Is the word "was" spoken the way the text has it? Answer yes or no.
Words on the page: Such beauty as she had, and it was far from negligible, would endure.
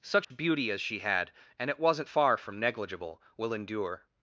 no